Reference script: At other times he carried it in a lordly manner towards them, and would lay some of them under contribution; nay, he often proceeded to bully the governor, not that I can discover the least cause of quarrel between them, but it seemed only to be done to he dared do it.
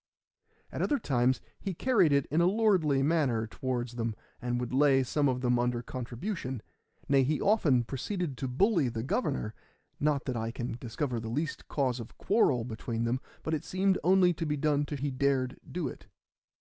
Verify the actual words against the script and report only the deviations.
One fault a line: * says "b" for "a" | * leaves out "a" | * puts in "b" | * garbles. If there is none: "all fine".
all fine